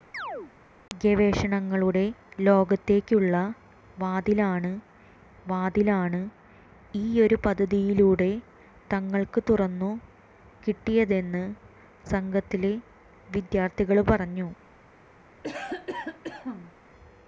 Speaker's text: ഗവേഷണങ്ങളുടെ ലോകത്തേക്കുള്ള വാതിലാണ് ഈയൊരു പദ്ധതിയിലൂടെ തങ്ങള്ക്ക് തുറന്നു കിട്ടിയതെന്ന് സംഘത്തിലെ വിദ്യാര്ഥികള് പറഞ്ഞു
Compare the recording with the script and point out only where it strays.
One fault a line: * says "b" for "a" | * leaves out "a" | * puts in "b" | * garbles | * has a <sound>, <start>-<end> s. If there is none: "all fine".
* has a chirp, 0.1-0.5 s
* puts in "വാതിലാണ്"
* has a cough, 15.4-16.7 s